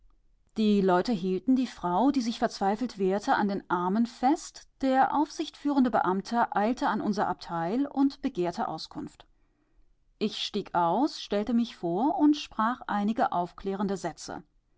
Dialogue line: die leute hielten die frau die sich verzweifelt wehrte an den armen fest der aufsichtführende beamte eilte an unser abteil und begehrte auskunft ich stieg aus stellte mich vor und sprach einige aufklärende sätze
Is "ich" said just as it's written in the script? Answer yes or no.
yes